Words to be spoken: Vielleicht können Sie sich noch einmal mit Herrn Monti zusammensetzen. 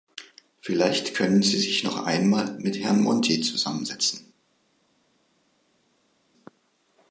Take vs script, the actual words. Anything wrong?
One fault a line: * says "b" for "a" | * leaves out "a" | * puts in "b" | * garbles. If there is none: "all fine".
all fine